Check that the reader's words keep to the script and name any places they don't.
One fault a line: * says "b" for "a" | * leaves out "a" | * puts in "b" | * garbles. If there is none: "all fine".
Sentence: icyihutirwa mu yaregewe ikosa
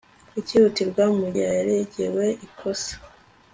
all fine